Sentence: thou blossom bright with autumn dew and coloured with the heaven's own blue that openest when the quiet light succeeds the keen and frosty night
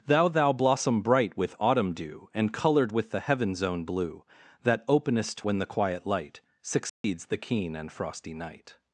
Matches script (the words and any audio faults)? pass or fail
fail